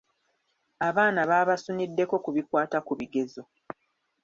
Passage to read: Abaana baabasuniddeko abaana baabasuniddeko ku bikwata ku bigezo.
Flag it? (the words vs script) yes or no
yes